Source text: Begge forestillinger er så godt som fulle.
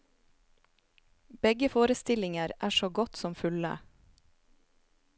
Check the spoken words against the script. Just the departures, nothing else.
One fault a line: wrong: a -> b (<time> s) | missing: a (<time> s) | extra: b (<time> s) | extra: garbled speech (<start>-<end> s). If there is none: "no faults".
no faults